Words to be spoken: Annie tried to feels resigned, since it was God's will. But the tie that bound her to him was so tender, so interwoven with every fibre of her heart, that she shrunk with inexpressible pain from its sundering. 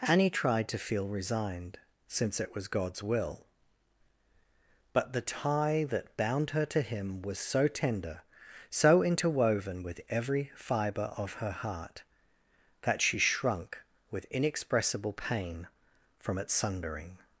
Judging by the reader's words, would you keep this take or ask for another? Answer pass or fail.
fail